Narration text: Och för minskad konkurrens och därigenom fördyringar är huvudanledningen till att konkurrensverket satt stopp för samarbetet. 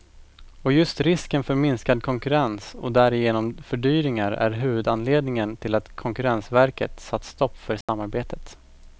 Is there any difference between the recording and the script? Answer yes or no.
yes